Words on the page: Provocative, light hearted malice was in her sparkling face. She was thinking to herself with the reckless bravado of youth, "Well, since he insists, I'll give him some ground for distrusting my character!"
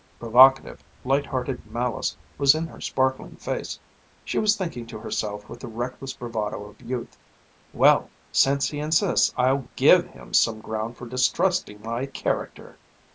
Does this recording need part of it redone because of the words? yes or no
no